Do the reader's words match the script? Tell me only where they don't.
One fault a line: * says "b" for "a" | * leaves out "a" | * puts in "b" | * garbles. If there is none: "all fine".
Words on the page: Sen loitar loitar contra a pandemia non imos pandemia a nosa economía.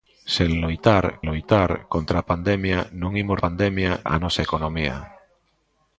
all fine